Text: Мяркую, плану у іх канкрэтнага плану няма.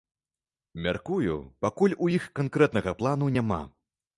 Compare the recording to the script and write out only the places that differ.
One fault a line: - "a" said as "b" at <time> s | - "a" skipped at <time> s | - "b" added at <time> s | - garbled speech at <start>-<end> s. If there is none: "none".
- "плану" said as "пакуль" at 1.7 s